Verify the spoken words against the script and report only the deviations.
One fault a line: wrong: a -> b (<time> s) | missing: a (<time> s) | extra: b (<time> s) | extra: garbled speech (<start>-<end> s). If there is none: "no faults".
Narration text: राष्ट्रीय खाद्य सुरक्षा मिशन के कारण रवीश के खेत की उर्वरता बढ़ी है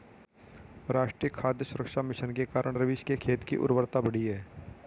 no faults